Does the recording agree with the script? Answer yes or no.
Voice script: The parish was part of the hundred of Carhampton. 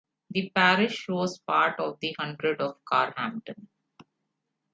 yes